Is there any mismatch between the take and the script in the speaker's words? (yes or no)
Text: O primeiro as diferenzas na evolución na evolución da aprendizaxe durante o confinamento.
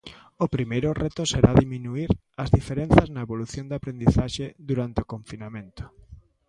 yes